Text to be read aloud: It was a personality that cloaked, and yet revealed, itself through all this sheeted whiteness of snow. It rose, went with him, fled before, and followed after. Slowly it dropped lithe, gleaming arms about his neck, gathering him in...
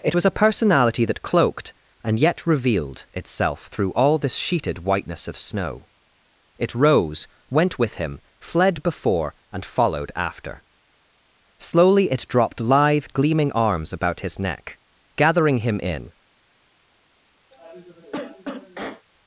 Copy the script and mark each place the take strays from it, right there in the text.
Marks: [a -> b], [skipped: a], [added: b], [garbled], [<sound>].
It was a personality that cloaked, and yet revealed, itself through all this sheeted whiteness of snow. It rose, went with him, fled before, and followed after. Slowly it dropped lithe, gleaming arms about his neck, gathering him in... [cough]